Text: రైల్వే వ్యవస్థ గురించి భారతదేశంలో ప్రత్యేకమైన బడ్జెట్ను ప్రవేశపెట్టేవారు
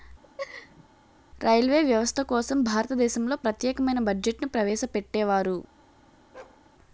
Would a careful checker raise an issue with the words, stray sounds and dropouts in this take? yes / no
yes